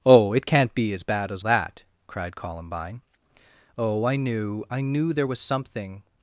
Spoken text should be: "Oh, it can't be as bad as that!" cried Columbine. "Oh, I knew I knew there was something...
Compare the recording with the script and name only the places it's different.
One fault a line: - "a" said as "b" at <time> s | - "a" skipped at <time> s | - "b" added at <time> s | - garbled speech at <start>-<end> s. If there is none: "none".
none